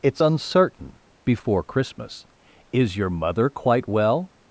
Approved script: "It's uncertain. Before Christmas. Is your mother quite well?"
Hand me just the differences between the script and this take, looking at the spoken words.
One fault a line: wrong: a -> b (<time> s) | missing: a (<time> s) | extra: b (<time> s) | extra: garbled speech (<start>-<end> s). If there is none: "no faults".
no faults